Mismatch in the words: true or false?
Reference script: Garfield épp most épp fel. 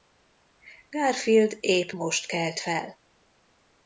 true